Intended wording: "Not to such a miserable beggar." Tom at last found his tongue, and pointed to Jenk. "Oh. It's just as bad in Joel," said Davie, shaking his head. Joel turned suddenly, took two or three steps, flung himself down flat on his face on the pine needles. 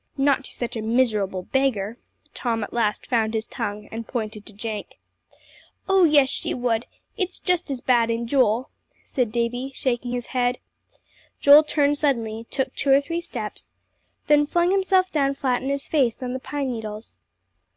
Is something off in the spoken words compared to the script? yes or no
yes